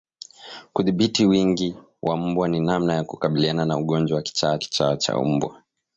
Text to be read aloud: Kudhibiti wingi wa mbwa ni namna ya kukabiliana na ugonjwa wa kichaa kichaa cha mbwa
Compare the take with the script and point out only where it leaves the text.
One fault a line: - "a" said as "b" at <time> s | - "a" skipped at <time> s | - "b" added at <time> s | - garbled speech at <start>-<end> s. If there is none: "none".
none